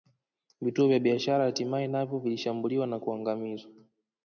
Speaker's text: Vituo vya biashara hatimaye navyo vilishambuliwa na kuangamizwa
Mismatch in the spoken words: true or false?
false